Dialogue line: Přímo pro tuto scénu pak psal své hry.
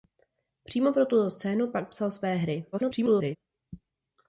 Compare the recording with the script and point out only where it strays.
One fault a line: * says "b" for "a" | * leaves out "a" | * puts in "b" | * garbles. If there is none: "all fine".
* garbles